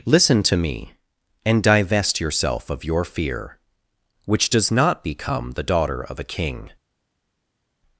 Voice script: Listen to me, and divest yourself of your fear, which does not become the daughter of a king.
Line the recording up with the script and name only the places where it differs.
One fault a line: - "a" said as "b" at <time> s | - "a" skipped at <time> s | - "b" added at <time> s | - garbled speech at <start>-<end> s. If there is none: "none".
none